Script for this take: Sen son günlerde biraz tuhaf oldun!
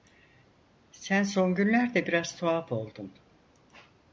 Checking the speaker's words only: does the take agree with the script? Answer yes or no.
yes